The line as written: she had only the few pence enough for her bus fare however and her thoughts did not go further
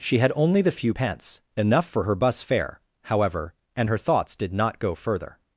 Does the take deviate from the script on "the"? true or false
false